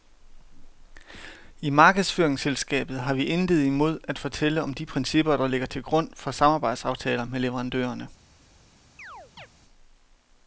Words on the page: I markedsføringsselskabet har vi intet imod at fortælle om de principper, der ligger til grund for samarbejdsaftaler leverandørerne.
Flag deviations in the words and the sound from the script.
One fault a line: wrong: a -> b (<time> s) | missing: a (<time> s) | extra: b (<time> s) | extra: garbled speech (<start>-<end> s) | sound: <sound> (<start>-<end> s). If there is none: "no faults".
extra: med (7.2 s)
sound: chirp (9.0-9.5 s)